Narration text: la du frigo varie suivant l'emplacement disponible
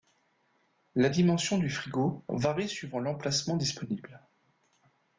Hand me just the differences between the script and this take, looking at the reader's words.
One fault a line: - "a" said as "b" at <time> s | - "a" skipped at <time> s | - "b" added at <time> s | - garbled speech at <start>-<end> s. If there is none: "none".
- "dimension" added at 1.1 s